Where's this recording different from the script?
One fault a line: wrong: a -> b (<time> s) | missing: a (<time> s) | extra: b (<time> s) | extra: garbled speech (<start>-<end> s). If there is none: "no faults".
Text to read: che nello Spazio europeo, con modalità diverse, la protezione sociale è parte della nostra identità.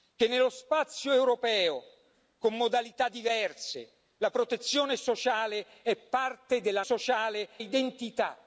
wrong: nostra -> sociale (6.8 s)